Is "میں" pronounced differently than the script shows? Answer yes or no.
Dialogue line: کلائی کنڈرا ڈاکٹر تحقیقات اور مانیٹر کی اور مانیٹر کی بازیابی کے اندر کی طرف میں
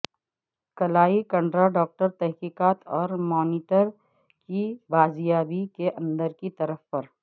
yes